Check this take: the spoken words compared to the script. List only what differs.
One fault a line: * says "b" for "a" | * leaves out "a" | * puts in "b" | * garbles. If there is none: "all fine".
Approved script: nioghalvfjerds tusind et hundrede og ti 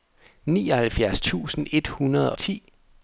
* leaves out "og"